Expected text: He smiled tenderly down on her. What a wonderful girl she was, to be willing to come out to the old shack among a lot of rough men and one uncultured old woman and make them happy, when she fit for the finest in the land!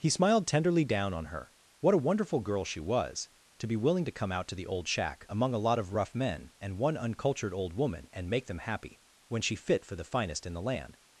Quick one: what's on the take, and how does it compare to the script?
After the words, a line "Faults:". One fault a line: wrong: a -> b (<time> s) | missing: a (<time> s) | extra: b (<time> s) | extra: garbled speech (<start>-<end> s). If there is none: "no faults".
He smiled tenderly down on her. What a wonderful girl she was, to be willing to come out to the old shack among a lot of rough men and one uncultured old woman and make them happy, when she fit for the finest in the land!
Faults:
no faults